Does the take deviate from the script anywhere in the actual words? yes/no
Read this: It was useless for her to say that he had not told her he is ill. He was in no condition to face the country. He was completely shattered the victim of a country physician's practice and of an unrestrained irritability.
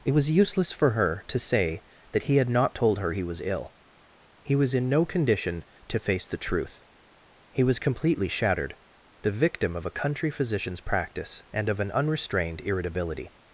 yes